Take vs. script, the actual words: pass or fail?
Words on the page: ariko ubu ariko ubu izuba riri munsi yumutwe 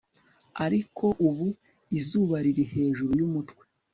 fail